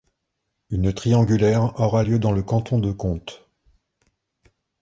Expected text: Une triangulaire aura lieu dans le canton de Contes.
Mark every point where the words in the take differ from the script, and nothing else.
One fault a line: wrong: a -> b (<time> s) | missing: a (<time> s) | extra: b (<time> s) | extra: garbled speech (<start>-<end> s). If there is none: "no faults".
no faults